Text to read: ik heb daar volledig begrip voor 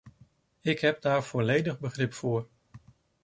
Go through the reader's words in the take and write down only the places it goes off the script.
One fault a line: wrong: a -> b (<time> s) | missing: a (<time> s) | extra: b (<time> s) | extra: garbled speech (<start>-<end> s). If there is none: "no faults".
no faults